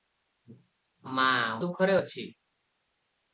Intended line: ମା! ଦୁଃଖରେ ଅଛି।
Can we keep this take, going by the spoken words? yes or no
yes